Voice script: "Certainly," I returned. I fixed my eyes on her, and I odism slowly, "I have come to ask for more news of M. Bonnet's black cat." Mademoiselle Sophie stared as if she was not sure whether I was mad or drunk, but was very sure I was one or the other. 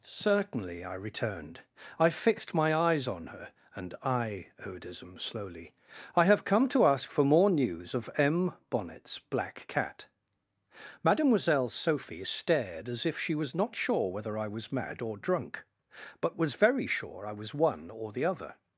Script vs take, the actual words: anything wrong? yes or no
no